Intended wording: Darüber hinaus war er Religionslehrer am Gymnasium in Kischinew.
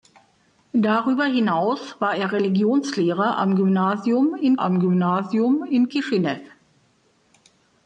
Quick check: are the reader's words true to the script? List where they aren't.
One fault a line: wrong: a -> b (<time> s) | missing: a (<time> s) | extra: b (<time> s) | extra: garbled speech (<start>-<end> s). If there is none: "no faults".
extra: am Gymnasium in (4.6 s)